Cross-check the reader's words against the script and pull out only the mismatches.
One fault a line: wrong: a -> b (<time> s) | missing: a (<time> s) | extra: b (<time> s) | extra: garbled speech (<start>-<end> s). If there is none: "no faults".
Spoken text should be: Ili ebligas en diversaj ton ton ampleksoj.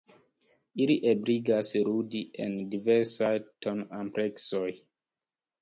extra: ludi (1.9 s)
missing: ton (3.9 s)